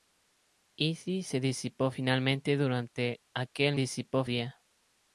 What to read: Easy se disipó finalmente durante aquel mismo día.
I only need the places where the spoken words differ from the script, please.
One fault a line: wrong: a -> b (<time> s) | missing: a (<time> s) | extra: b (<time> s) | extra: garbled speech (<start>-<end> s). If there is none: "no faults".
wrong: mismo -> disipó (3.7 s)